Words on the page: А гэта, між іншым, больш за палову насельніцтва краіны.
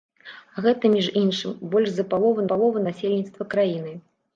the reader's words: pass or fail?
fail